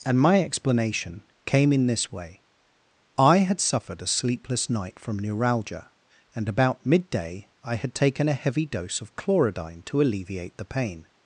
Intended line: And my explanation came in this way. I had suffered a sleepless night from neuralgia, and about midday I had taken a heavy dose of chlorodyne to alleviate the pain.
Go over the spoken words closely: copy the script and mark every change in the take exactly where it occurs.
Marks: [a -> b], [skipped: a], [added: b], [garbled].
And my explanation came in this way. I had suffered a sleepless night from neuralgia, and about midday I had taken a heavy dose of chlorodyne to alleviate the pain.